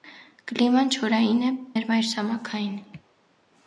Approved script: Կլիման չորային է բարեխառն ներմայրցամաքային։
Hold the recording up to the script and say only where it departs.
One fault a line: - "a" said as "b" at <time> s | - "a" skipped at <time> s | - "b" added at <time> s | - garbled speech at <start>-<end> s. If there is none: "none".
- "բարեխառն" skipped at 1.5 s